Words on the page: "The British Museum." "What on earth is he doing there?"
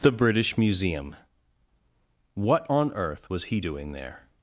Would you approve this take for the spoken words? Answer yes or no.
no